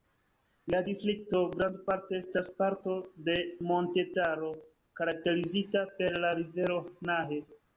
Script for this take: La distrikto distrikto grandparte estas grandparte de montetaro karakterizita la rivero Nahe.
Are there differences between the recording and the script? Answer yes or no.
yes